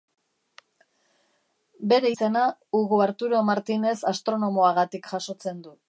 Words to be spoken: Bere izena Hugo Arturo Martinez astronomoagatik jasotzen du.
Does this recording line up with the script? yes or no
yes